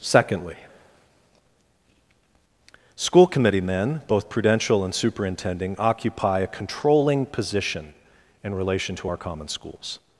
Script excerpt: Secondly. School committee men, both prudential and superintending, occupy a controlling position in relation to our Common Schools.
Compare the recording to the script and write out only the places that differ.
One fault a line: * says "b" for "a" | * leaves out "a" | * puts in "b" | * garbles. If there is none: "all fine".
all fine